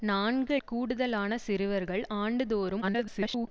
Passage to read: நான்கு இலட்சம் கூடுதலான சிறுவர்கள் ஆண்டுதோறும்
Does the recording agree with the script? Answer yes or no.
no